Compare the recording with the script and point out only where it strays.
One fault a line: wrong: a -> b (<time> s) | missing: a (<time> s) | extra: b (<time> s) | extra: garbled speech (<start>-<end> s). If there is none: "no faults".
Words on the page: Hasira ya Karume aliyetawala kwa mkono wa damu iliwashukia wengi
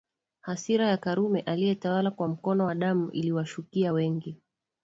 no faults